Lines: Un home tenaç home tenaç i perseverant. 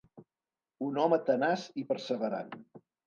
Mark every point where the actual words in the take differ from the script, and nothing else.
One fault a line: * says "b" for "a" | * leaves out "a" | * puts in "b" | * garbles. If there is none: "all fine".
* leaves out "home tenaç"